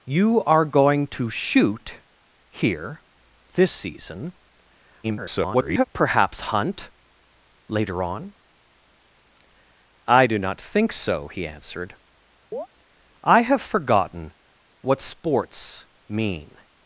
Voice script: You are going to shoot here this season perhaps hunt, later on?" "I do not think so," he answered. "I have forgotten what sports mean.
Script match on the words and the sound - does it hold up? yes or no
no